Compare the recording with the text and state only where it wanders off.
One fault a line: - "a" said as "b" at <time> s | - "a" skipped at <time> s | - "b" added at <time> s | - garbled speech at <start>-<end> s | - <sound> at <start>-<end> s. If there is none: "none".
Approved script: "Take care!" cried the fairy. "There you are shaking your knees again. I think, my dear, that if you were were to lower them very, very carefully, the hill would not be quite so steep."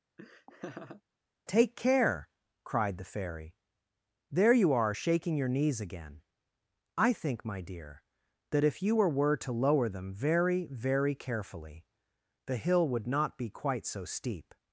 - laugh at 0.2-1.0 s